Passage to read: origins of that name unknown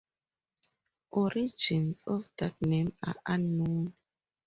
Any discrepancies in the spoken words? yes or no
yes